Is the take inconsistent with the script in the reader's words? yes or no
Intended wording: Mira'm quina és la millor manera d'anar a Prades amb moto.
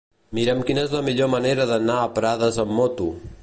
no